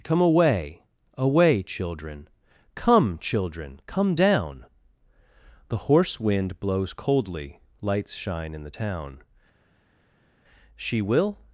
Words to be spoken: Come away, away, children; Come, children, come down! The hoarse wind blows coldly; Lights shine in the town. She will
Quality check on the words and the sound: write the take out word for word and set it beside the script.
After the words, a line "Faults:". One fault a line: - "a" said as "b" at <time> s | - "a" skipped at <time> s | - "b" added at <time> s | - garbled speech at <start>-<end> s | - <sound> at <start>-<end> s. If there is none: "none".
Come away, away, children; Come, children, come down! The hoarse wind blows coldly; Lights shine in the town. She will
Faults:
none